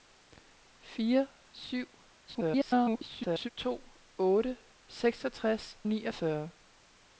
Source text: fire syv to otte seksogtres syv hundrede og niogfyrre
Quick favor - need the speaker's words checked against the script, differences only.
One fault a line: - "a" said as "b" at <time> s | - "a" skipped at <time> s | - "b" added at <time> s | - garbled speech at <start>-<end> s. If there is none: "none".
- garbled speech at 2.3-3.5 s
- "syv hundrede og" skipped at 5.8 s